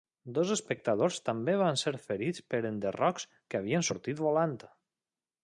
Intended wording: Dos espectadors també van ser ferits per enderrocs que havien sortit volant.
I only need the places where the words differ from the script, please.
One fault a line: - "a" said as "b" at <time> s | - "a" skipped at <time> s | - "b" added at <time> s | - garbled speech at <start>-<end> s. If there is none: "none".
none